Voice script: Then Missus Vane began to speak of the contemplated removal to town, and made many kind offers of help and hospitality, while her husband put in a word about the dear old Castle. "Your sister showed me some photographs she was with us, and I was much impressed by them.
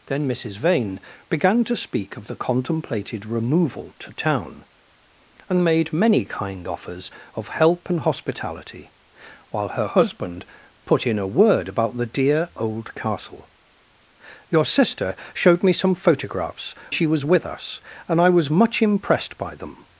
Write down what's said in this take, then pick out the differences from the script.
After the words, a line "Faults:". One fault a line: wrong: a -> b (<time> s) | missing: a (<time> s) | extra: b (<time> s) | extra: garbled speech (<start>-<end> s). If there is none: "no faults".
Then Missus Vane began to speak of the contemplated removal to town, and made many kind offers of help and hospitality, while her husband put in a word about the dear old Castle. "Your sister showed me some photographs she was with us, and I was much impressed by them.
Faults:
no faults